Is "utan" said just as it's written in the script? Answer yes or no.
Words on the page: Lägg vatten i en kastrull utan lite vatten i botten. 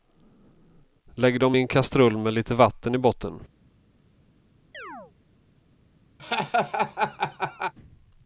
no